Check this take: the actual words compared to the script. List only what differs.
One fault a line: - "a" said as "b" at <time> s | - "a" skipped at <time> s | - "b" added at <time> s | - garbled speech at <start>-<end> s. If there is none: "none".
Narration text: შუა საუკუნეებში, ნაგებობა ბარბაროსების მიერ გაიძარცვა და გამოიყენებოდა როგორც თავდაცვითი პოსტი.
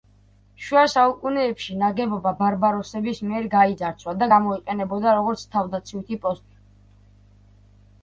none